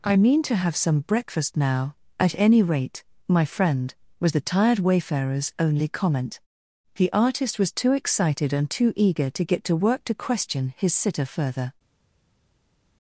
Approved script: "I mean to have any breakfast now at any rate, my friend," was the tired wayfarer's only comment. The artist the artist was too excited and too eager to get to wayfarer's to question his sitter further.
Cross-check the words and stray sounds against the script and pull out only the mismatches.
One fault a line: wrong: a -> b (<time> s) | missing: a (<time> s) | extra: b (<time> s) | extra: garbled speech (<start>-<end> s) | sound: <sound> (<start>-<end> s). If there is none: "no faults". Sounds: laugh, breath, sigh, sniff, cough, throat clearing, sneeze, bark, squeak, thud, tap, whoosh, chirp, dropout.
wrong: any -> some (0.8 s)
missing: the artist (7.6 s)
wrong: wayfarer's -> work (9.8 s)